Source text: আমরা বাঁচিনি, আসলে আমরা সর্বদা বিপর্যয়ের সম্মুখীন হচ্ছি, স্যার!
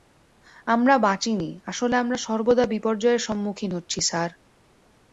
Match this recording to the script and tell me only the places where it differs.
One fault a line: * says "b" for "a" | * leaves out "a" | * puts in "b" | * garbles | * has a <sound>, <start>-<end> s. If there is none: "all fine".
all fine